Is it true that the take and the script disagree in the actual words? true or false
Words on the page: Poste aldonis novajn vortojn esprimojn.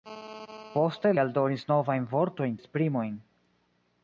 false